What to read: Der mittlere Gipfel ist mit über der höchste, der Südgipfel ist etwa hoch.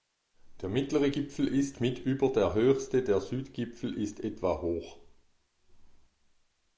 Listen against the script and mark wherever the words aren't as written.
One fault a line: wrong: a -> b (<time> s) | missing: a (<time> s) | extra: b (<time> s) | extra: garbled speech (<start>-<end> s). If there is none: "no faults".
no faults